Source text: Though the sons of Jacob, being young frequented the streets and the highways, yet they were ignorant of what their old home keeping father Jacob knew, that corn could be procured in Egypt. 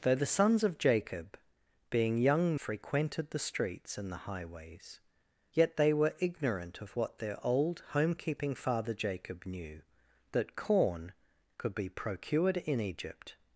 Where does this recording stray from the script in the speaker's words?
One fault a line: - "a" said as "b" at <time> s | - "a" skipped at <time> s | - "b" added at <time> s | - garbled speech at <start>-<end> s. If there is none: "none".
none